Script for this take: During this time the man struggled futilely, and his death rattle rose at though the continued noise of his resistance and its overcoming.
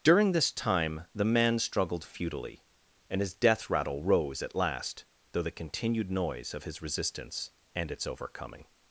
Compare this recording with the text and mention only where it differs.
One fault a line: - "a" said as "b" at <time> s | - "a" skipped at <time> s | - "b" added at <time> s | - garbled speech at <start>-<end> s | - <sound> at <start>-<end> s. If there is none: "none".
- "last" added at 4.5 s